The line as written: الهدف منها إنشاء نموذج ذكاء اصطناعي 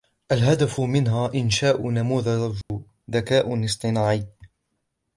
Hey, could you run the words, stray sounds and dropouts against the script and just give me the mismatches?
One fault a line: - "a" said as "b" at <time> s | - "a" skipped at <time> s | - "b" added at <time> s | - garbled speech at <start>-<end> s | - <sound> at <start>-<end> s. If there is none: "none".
- dropout at 2.6-2.7 s